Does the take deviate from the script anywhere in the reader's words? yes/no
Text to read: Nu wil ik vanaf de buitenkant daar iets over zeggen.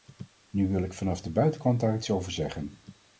no